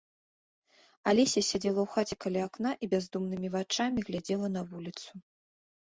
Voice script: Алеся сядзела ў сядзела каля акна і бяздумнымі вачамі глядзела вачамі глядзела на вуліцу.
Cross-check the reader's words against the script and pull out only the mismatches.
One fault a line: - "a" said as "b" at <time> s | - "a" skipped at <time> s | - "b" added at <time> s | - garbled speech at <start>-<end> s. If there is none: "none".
- "сядзела" said as "хаце" at 1.9 s
- "вачамі глядзела" skipped at 4.5 s